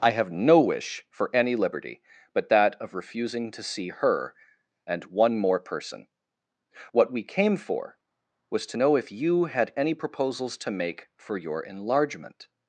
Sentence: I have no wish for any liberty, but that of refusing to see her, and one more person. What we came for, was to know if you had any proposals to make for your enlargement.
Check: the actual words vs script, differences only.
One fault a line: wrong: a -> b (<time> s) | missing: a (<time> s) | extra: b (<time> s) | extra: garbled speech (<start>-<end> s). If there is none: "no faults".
no faults